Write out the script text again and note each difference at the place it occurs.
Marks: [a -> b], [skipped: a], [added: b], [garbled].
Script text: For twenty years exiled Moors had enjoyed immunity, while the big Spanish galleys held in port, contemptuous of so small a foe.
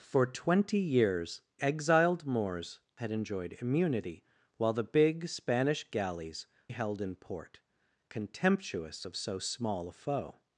For twenty years exiled Moors had enjoyed immunity, while the big Spanish galleys held in port, contemptuous of so small a foe.